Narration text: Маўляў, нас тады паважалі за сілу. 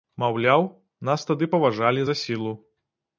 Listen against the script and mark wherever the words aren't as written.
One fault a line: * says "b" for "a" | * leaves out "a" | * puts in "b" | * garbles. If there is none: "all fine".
all fine